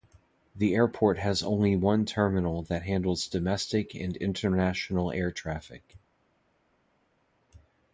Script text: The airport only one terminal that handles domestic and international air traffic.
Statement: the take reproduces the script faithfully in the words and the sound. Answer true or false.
false